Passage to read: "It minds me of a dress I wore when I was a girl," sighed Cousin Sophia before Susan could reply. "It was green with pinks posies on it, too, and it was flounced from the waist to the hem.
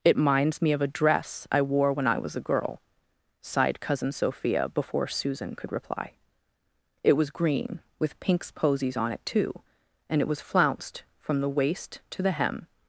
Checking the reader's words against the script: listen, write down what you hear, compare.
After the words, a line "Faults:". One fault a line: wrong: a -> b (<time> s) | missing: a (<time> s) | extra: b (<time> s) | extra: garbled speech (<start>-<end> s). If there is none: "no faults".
"It minds me of a dress I wore when I was a girl," sighed Cousin Sophia before Susan could reply. "It was green with pinks posies on it, too, and it was flounced from the waist to the hem.
Faults:
no faults